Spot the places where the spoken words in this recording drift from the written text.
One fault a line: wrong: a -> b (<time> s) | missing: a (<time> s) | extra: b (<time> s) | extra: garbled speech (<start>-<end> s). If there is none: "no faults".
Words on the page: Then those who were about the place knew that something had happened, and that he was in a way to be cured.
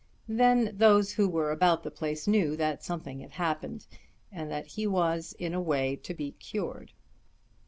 no faults